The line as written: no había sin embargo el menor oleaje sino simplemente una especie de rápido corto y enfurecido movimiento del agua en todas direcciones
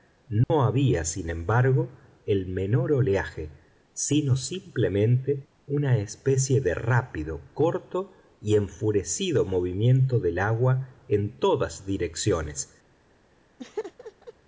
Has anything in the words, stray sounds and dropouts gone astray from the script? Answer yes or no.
yes